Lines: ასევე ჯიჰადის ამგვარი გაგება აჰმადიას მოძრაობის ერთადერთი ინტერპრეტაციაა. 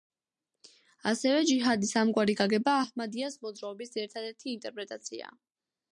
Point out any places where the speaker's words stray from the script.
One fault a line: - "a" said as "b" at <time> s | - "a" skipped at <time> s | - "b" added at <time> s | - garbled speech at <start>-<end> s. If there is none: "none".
none